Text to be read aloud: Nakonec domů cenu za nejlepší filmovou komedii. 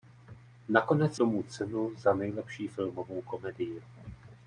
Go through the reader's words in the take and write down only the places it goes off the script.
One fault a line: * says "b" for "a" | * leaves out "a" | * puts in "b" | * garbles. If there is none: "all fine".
all fine